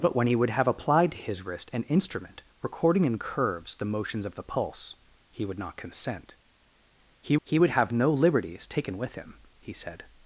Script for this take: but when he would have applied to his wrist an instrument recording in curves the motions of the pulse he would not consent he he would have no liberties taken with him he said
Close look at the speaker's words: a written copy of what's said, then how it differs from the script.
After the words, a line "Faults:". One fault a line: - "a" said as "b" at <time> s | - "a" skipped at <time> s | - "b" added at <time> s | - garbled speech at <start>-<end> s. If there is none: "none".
but when he would have applied to his wrist an instrument recording in curves the motions of the pulse he would not consent he he would have no liberties taken with him he said
Faults:
none